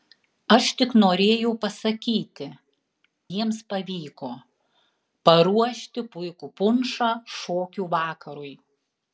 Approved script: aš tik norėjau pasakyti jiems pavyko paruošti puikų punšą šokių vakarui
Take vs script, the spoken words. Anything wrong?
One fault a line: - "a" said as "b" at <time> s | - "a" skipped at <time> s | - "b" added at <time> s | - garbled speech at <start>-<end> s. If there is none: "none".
none